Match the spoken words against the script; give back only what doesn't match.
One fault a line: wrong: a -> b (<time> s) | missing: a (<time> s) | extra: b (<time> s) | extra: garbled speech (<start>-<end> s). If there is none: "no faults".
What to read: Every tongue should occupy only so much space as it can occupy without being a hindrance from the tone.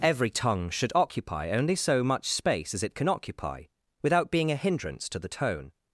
wrong: from -> to (5.1 s)